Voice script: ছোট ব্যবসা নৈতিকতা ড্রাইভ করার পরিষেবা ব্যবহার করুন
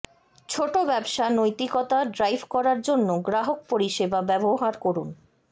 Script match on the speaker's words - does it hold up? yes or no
no